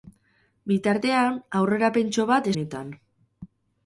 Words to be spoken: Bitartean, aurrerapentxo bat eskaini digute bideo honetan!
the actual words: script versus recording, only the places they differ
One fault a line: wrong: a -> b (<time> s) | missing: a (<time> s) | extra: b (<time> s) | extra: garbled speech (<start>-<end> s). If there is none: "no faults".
missing: eskaini digute bideo (2.5 s)